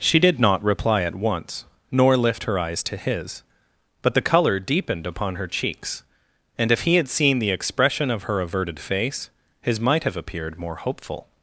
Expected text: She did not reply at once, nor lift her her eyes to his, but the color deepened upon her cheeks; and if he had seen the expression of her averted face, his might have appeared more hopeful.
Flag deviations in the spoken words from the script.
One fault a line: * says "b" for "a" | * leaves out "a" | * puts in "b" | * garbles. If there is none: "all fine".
* leaves out "her"